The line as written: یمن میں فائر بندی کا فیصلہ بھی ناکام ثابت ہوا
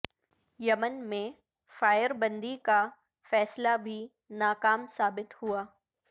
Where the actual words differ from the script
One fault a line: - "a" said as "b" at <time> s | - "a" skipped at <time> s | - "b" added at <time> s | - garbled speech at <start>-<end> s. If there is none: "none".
none